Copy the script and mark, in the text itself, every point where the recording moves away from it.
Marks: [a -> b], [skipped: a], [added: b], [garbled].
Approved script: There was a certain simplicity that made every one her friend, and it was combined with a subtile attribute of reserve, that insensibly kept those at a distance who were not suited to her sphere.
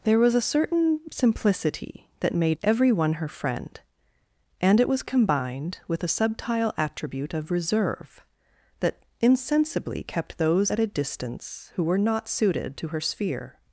There was a certain simplicity that made every one her friend, and it was combined with a subtile attribute of reserve, that insensibly kept those at a distance who were not suited to her sphere.